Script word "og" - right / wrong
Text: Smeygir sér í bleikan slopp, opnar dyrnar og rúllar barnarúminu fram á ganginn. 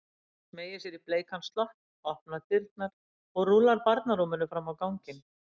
right